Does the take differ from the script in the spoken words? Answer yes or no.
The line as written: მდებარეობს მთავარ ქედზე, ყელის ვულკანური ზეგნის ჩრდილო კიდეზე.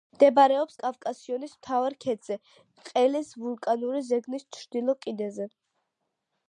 yes